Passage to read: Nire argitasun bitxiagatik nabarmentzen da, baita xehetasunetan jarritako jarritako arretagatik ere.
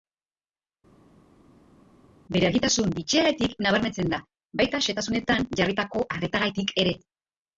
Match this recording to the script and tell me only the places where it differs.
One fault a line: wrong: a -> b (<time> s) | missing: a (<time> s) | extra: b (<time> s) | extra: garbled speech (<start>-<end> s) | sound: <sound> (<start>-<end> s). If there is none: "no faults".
wrong: Nire -> Bere (2.3 s)
missing: jarritako (6.0 s)